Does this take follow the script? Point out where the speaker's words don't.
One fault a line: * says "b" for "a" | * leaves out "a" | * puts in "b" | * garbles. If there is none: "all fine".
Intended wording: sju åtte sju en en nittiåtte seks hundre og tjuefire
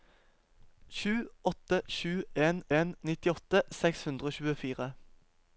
all fine